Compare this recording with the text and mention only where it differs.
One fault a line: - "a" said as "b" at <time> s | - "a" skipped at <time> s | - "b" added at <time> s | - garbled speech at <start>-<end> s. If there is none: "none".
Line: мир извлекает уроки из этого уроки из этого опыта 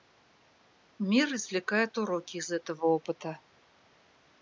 - "уроки из этого" skipped at 2.9 s